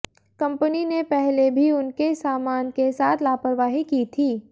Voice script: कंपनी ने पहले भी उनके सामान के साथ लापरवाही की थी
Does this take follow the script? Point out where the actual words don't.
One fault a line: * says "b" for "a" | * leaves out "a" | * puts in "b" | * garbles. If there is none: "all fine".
all fine